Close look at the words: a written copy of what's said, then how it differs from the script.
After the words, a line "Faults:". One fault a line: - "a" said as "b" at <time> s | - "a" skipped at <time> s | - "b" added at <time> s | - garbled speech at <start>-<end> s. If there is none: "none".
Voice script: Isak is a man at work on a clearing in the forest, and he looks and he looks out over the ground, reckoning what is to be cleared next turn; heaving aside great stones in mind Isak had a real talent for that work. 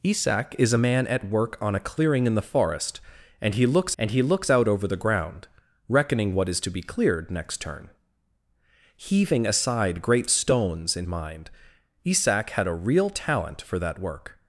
Isak is a man at work on a clearing in the forest, and he looks and he looks out over the ground, reckoning what is to be cleared next turn; heaving aside great stones in mind Isak had a real talent for that work.
Faults:
none